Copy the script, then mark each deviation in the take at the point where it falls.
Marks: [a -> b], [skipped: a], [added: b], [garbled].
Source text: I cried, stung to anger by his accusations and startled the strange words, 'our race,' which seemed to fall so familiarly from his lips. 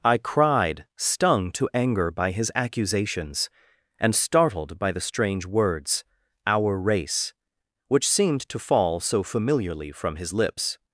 I cried, stung to anger by his accusations and startled [added: by] the strange words, 'our race,' which seemed to fall so familiarly from his lips.